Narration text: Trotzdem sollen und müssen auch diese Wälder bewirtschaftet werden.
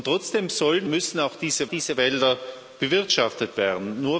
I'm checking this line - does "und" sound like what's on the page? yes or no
no